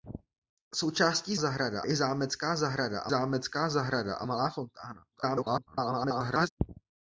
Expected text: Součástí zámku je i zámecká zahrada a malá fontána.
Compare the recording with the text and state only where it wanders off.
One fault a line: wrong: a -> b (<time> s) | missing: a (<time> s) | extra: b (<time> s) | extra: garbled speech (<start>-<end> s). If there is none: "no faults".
wrong: zámku -> zahrada (1.4 s)
extra: zámecká zahrada a (3.1 s)
extra: garbled speech (5.1-6.5 s)